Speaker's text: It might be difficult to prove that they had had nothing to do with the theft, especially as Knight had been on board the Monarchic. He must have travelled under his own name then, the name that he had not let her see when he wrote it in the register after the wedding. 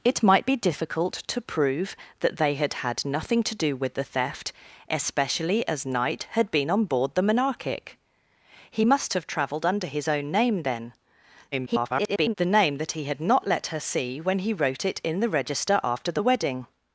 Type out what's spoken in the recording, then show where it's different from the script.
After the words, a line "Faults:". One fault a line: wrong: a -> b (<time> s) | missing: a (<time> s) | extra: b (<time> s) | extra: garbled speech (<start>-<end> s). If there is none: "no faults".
It might be difficult to prove that they had had nothing to do with the theft, especially as Knight had been on board the Monarchic. He must have travelled under his own name then, [garbled] the name that he had not let her see when he wrote it in the register after the wedding.
Faults:
extra: garbled speech (11.5-12.3 s)